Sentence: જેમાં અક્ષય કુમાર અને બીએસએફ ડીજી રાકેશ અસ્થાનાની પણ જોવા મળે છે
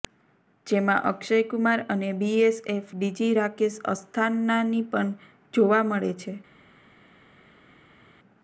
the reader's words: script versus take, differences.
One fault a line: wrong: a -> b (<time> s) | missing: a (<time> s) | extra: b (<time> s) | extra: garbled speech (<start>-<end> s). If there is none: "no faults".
no faults